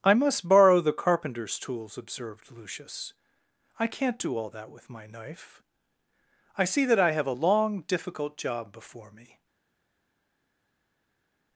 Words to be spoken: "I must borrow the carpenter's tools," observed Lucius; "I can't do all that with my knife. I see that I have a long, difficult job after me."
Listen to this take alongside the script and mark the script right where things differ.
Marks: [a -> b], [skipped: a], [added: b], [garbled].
"I must borrow the carpenter's tools," observed Lucius; "I can't do all that with my knife. I see that I have a long, difficult job [after -> before] me."